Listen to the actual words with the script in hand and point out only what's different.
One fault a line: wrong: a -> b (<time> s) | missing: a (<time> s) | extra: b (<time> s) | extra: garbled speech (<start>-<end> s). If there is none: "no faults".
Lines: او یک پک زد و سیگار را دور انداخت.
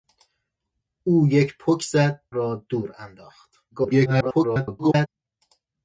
missing: و سیگار (2.2 s)
extra: garbled speech (3.7-5.1 s)